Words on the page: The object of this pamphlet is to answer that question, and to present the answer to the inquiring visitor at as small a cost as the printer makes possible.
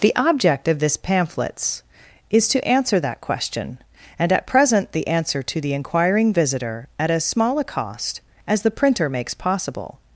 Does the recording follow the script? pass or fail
fail